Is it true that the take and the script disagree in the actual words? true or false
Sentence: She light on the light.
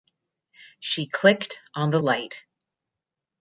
true